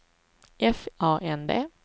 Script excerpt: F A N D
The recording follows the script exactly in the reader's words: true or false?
true